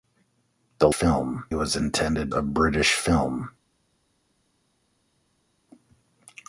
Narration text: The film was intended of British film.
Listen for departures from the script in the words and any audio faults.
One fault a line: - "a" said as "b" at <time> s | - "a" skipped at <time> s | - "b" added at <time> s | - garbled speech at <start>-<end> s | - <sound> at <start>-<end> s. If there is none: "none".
none